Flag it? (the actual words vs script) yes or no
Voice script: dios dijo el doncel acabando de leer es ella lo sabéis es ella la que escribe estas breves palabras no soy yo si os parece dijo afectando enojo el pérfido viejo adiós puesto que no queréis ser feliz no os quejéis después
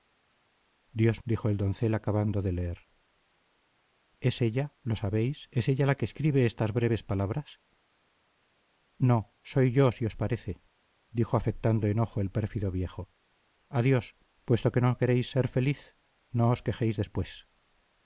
no